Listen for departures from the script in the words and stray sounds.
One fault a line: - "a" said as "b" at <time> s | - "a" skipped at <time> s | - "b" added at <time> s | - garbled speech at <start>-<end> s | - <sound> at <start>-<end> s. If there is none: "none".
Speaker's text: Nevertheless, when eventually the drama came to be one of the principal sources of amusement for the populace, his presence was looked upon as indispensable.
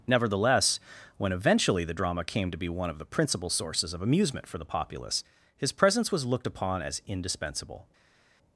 none